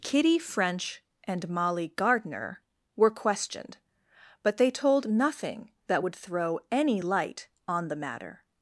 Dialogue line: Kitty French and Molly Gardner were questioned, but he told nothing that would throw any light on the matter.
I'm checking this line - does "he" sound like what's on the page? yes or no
no